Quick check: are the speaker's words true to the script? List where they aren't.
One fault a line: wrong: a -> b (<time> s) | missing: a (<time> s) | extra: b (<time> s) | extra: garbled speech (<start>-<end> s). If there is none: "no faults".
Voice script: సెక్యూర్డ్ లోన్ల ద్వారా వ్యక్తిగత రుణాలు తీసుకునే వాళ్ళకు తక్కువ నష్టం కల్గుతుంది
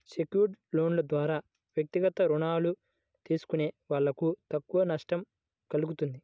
no faults